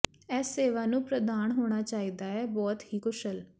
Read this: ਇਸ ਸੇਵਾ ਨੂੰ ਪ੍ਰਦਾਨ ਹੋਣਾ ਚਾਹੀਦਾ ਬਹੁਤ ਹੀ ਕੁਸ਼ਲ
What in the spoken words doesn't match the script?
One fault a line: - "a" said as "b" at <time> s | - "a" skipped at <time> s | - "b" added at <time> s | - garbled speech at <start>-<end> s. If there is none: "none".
- "ਹੈ" added at 2.3 s